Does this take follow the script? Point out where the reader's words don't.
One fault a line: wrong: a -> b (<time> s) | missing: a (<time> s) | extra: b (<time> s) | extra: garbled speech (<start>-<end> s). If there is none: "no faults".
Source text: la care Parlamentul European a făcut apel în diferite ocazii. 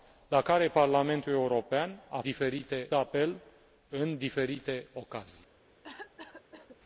wrong: făcut -> diferite (2.2 s)